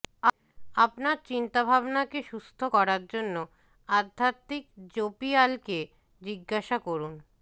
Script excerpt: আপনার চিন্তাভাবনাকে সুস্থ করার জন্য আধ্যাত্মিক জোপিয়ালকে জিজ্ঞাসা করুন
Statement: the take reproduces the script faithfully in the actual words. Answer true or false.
true